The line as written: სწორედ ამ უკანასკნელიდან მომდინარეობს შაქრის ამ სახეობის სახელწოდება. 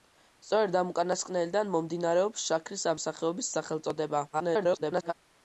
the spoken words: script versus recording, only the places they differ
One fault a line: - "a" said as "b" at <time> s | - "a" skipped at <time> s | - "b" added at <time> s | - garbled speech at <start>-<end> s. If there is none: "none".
- garbled speech at 4.3-5.1 s